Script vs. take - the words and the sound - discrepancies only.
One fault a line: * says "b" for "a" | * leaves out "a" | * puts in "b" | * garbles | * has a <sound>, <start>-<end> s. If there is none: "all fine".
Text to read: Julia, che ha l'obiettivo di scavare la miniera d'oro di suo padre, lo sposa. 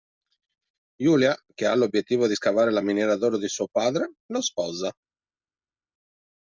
all fine